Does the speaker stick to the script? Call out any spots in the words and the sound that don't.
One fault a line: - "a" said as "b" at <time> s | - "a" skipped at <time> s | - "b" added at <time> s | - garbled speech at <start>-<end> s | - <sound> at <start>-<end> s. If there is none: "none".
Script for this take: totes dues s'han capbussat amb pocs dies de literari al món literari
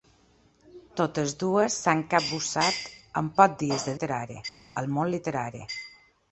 none